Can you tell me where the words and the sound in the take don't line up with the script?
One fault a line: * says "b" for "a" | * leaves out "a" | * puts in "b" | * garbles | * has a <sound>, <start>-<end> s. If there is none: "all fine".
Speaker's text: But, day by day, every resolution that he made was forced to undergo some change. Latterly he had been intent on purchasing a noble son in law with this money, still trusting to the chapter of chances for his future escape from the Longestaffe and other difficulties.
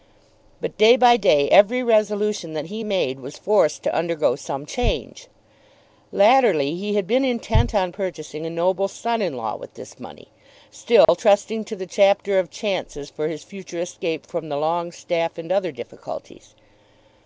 * has a dropout, 11.0-11.1 s